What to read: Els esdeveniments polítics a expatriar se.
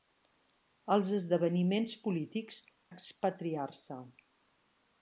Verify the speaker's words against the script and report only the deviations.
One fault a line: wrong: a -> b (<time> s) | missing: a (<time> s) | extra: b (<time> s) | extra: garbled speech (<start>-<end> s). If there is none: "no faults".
no faults